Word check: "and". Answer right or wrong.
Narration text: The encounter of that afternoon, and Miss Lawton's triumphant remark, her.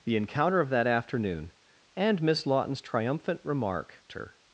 right